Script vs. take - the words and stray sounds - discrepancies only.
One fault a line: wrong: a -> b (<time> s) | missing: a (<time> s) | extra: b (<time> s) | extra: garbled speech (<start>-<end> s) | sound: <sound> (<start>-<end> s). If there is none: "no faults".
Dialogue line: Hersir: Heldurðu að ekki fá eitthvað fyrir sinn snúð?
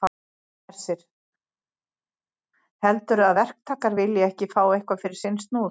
extra: verktakar vilji (3.4 s)